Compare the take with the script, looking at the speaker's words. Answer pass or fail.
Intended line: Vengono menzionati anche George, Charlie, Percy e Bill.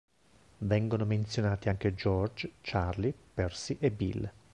pass